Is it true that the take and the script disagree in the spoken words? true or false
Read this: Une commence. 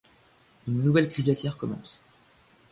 true